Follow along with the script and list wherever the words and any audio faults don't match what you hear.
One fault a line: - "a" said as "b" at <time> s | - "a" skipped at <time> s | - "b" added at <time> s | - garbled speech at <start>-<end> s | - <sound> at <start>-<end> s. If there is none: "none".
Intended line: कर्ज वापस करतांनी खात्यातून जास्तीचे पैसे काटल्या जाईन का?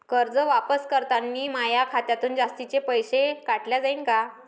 - "माया" added at 1.5 s